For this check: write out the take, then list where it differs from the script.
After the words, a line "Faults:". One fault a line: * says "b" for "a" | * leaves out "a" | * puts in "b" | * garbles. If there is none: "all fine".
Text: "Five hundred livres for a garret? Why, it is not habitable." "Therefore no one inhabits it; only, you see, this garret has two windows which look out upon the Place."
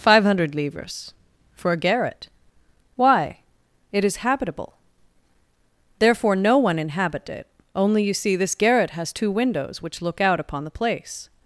"Five hundred livres for a garret? Why, it is habitable." "Therefore no one inhabit it; only, you see, this garret has two windows which look out upon the Place."
Faults:
* leaves out "not"
* says "inhabit" for "inhabits"